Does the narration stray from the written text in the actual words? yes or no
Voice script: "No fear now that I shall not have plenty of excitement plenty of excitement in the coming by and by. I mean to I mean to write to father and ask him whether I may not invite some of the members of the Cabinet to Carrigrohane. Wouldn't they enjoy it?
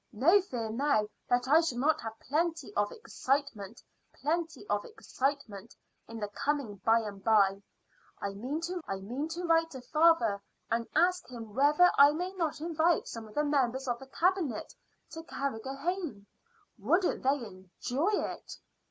no